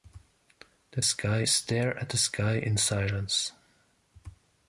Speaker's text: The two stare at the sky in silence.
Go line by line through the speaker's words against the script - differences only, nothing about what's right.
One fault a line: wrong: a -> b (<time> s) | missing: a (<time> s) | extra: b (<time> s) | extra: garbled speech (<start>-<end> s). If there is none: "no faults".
wrong: two -> sky (1.0 s)